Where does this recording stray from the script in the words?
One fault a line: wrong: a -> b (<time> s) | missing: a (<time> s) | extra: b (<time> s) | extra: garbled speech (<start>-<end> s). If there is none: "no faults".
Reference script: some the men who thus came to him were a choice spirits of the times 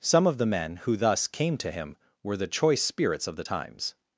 extra: of (0.2 s)
wrong: a -> the (2.4 s)